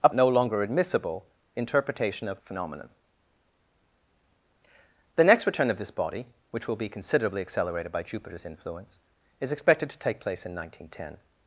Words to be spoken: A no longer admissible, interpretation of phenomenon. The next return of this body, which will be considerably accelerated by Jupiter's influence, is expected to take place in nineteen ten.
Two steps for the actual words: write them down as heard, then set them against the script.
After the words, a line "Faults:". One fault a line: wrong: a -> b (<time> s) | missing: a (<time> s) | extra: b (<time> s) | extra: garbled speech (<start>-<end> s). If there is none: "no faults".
A no longer admissible, interpretation of phenomenon. The next return of this body, which will be considerably accelerated by Jupiter's influence, is expected to take place in nineteen ten.
Faults:
no faults